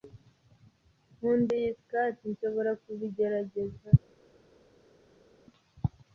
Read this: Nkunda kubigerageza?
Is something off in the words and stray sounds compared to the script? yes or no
yes